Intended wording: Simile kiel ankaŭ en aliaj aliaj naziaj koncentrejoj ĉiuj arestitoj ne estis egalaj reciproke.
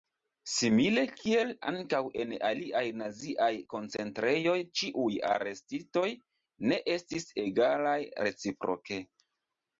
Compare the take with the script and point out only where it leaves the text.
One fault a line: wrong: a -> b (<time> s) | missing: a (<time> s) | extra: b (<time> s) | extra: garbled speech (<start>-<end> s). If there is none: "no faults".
missing: aliaj (2.8 s)